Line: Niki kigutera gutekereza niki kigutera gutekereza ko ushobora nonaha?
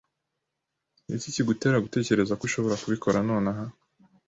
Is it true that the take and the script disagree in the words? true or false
true